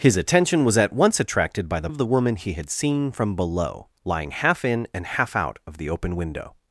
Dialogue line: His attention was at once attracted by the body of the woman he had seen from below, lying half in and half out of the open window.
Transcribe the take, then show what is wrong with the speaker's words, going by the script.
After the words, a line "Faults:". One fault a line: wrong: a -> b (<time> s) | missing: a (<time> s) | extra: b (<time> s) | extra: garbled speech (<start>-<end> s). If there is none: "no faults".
His attention was at once attracted by the of the woman he had seen from below, lying half in and half out of the open window.
Faults:
missing: body (1.9 s)